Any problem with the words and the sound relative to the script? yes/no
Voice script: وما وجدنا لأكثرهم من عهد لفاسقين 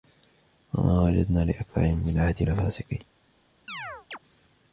yes